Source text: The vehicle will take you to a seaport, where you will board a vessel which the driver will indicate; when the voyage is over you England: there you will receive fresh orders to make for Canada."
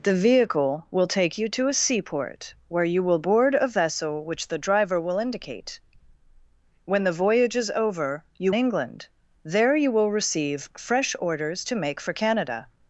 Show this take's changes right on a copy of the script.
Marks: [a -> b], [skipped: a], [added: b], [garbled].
The vehicle will take you to a seaport, where you will board a vessel which the driver will indicate; when the voyage is over you England: there you will receive fresh orders to make for Canada."